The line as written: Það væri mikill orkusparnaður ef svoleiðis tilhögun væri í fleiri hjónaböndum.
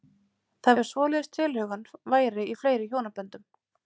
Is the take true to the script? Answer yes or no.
no